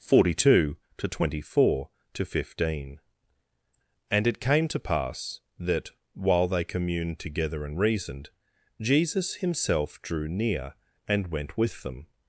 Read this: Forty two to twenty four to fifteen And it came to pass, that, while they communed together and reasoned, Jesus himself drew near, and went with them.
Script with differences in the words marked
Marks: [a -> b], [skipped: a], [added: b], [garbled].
Forty two to twenty four to fifteen And it came to pass, that, while they communed together and reasoned, Jesus himself drew near, and went with them.